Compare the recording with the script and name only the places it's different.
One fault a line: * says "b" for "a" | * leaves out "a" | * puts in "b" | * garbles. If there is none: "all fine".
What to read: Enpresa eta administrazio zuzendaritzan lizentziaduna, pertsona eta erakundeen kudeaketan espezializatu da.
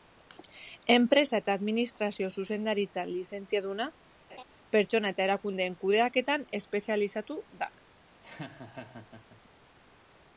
all fine